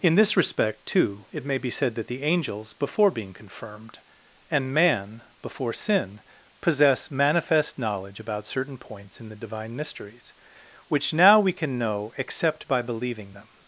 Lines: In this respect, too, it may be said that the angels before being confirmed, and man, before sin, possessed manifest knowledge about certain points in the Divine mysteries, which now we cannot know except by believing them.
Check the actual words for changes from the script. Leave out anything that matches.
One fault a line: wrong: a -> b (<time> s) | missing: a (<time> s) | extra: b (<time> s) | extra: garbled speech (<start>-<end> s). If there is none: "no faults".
wrong: possessed -> possess (6.6 s)
wrong: cannot -> can (11.5 s)